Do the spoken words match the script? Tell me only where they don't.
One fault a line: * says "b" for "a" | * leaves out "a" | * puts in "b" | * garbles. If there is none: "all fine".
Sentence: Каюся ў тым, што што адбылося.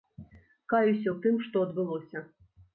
* leaves out "што"